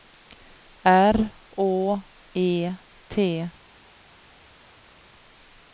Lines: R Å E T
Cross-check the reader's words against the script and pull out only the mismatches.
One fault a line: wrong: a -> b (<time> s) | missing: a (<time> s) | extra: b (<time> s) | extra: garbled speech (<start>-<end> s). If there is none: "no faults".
no faults